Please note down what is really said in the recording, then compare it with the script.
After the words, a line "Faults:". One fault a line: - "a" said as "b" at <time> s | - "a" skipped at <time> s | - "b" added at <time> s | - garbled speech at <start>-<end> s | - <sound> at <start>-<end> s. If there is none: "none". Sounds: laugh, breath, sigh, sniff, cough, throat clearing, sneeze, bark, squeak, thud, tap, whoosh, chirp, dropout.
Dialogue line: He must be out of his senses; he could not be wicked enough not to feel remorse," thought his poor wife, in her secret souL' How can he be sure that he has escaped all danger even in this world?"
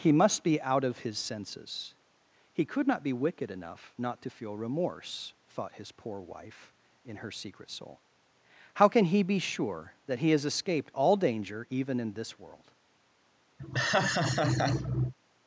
He must be out of his senses; he could not be wicked enough not to feel remorse," thought his poor wife, in her secret souL' How can he be sure that he has escaped all danger even in this world?"
Faults:
- laugh at 13.6-15.1 s